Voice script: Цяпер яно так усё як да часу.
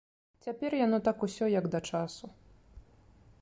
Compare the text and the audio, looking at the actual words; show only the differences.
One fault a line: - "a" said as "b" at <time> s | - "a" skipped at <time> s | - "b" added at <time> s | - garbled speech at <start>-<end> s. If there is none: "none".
none